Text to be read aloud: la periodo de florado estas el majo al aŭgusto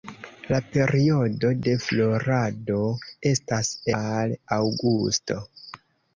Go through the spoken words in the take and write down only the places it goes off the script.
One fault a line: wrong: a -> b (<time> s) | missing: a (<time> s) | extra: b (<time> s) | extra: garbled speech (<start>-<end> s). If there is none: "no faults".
missing: el majo (3.7 s)